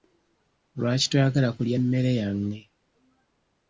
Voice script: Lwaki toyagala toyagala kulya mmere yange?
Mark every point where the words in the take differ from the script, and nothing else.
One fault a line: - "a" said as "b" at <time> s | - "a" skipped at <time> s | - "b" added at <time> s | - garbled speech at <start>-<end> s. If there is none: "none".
- "toyagala" skipped at 1.5 s